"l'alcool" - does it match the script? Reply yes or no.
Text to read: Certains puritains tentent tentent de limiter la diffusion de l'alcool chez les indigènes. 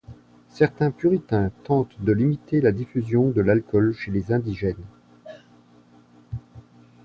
yes